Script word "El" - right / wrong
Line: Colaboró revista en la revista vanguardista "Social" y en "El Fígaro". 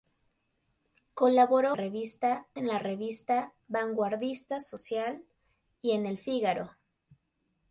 right